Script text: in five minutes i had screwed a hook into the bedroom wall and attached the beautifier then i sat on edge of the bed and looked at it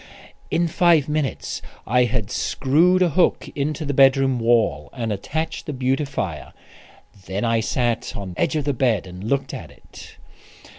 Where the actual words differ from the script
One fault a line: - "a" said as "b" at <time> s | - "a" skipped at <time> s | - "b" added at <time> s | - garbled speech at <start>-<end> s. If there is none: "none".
none